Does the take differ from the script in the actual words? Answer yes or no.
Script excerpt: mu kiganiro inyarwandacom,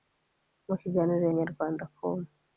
no